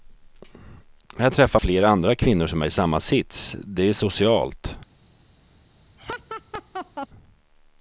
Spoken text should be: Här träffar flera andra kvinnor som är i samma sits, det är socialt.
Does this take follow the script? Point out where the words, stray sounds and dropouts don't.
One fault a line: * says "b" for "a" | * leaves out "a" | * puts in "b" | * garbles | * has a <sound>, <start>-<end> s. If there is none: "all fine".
* has a laugh, 6.0-7.1 s